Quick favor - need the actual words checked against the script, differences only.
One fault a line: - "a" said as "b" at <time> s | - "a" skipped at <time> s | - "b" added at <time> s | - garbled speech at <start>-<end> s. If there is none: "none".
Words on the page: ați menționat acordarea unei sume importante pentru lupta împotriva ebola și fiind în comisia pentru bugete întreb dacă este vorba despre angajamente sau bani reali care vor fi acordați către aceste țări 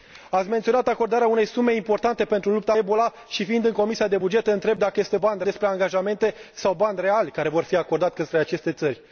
- "împotriva" skipped at 2.7 s
- "vorba" said as "bani" at 5.2 s